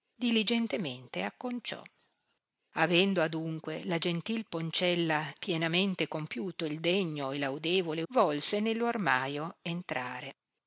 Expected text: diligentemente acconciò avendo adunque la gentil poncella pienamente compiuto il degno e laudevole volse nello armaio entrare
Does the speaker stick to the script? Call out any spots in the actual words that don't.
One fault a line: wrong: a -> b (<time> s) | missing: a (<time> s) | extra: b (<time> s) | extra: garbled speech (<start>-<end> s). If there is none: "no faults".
no faults